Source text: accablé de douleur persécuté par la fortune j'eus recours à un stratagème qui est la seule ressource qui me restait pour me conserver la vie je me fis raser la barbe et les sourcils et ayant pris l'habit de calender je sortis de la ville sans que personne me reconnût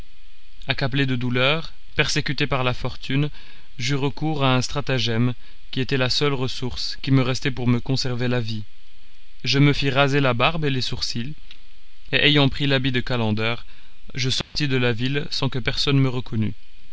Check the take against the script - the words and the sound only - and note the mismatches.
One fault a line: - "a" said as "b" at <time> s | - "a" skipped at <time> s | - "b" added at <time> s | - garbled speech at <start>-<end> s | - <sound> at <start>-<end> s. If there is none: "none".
- "est" said as "était" at 5.8 s
- dropout at 14.4-14.6 s